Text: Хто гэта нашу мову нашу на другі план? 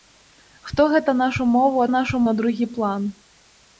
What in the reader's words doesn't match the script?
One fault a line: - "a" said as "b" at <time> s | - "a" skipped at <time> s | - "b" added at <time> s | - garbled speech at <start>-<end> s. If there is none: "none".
none